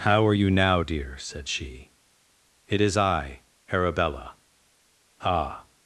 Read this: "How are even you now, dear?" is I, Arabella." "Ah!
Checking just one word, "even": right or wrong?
wrong